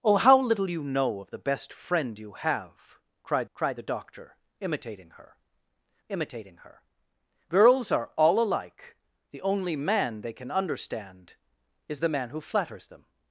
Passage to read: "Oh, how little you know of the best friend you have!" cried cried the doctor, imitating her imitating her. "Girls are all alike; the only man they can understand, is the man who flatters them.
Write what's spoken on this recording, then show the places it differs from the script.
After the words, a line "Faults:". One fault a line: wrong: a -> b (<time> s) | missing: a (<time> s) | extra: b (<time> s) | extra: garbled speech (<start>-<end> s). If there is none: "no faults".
"Oh, how little you know of the best friend you have!" cried cried the doctor, imitating her imitating her. "Girls are all alike; the only man they can understand, is the man who flatters them.
Faults:
no faults